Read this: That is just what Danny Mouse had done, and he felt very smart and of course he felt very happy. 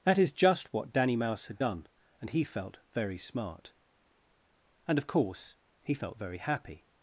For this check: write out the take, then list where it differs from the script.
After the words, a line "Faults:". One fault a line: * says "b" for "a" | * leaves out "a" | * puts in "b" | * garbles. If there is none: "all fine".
That is just what Danny Mouse had done, and he felt very smart and of course he felt very happy.
Faults:
all fine